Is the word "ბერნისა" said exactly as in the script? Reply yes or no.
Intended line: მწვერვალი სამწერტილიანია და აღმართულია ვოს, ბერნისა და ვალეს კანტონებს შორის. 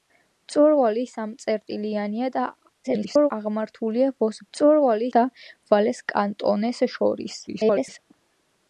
no